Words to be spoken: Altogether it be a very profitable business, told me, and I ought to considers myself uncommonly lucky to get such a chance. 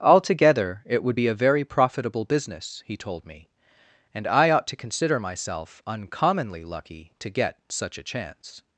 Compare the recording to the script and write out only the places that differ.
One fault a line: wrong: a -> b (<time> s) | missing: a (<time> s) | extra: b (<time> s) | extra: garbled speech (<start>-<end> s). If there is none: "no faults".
extra: would (1.0 s)
extra: he (2.8 s)
wrong: considers -> consider (4.7 s)